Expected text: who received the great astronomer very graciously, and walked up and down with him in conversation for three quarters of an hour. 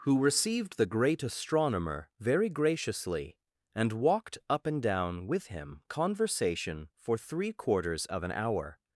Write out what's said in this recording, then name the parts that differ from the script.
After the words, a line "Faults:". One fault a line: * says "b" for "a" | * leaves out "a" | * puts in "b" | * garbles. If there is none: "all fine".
who received the great astronomer very graciously, and walked up and down with him conversation for three quarters of an hour.
Faults:
* leaves out "in"